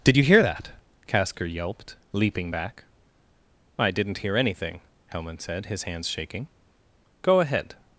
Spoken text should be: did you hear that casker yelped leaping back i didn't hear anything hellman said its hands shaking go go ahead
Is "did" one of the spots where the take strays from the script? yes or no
no